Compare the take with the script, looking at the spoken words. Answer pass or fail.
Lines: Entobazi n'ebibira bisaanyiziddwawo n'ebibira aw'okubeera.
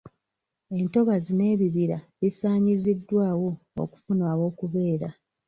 fail